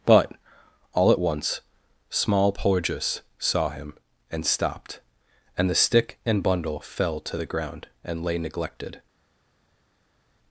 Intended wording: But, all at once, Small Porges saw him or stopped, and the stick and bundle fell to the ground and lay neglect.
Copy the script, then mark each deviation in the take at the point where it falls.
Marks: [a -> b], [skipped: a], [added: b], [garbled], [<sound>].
But, all at once, Small Porges saw him [or -> and] stopped, and the stick and bundle fell to the ground and lay [neglect. -> neglected]